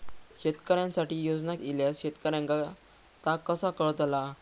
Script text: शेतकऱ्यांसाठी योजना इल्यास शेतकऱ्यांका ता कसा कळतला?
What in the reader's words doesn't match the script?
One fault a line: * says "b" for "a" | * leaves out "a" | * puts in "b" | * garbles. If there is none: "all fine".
all fine